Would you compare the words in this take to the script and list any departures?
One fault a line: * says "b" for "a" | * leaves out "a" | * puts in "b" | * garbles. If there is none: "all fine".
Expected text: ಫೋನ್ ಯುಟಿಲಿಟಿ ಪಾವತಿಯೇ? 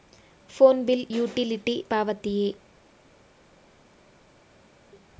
* puts in "ಬಿಲ್"